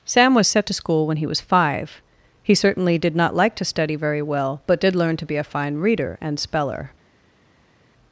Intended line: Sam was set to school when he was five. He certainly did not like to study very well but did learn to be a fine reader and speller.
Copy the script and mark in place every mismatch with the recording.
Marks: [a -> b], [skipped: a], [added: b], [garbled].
Sam was set to school when he was five. He certainly did not like to study very well but did learn to be a fine reader and speller.